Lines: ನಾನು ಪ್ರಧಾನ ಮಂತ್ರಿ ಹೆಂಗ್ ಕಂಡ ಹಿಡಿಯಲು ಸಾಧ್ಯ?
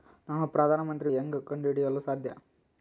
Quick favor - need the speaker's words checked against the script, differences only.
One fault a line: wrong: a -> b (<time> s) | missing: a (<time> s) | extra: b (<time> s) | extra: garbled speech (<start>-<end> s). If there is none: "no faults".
no faults